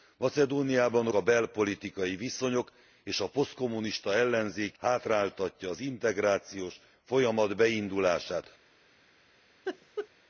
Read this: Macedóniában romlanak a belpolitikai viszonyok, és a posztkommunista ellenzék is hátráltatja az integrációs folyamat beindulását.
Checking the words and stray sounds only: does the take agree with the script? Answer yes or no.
no